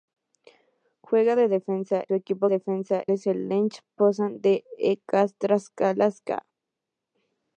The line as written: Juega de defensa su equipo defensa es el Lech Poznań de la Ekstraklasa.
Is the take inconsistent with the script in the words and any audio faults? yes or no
no